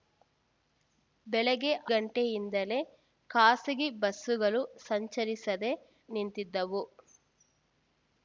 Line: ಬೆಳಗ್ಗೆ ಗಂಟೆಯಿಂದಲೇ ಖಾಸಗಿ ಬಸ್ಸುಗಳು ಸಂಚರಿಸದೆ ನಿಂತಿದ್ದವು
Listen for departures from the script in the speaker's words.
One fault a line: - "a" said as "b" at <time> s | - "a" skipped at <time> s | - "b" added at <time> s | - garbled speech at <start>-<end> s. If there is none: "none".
none